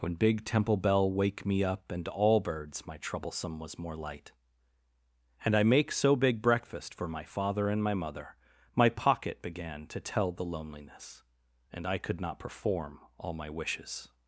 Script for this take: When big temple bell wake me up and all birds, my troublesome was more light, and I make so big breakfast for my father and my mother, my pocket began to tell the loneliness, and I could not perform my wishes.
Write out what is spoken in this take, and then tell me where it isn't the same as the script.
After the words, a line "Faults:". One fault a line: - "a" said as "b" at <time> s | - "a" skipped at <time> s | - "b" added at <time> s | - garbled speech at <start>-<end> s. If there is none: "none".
When big temple bell wake me up and all birds, my troublesome was more light, and I make so big breakfast for my father and my mother, my pocket began to tell the loneliness, and I could not perform all my wishes.
Faults:
- "all" added at 13.2 s